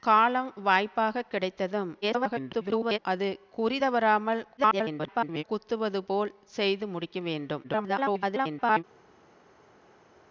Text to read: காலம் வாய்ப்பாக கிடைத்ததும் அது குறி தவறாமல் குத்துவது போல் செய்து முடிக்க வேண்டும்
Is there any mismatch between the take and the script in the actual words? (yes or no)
yes